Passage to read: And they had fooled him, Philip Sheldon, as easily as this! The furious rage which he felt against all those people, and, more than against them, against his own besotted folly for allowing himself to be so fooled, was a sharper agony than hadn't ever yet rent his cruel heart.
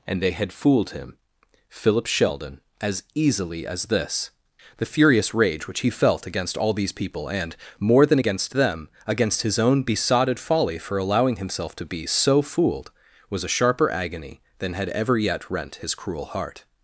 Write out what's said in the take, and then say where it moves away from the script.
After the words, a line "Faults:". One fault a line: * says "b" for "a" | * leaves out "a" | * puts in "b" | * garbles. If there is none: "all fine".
And they had fooled him, Philip Sheldon, as easily as this! The furious rage which he felt against all these people, and, more than against them, against his own besotted folly for allowing himself to be so fooled, was a sharper agony than had ever yet rent his cruel heart.
Faults:
* says "these" for "those"
* says "had" for "hadn't"